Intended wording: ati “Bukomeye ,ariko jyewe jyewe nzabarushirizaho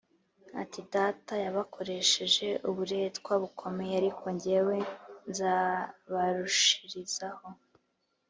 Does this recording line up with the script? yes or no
no